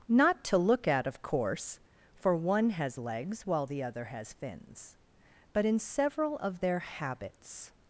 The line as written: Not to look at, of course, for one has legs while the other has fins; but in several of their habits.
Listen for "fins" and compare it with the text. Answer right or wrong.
right